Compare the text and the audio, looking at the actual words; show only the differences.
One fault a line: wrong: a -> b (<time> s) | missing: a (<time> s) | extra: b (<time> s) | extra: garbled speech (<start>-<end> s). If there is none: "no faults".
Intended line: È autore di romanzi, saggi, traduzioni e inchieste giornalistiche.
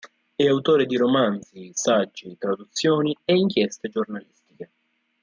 no faults